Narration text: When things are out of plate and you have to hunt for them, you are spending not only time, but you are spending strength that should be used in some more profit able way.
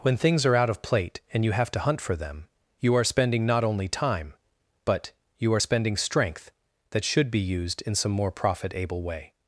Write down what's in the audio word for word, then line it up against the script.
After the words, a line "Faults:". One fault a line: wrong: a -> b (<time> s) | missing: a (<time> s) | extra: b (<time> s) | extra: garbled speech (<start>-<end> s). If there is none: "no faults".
When things are out of plate and you have to hunt for them, you are spending not only time, but you are spending strength that should be used in some more profit able way.
Faults:
no faults